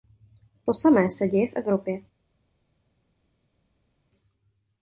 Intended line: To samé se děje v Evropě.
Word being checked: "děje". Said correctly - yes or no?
yes